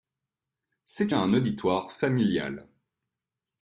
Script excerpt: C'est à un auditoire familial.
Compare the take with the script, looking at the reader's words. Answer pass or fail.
pass